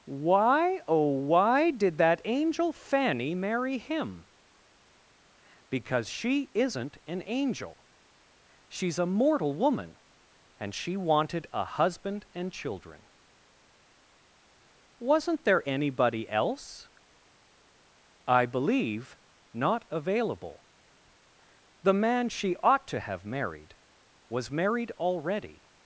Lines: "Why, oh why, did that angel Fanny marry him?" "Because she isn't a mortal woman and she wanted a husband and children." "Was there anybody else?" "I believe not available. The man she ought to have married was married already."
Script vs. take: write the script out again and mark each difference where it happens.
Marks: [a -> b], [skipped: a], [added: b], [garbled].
"Why, oh why, did that angel Fanny marry him?" "Because she isn't [added: an angel She's] a mortal woman and she wanted a husband and children." ["Was -> Wasn't] there anybody else?" "I believe not available. The man she ought to have married was married already."